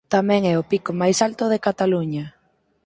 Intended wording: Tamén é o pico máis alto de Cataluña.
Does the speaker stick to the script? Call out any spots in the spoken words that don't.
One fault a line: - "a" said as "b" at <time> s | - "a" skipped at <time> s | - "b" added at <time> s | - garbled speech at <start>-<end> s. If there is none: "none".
none